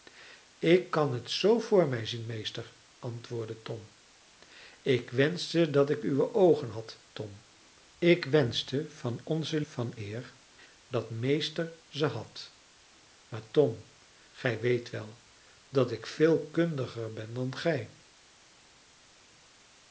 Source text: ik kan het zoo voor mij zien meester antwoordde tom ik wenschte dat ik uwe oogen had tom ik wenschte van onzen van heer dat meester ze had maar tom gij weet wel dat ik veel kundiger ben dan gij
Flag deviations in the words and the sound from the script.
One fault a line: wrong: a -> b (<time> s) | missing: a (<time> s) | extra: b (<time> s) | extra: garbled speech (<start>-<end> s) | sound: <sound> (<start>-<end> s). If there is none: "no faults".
no faults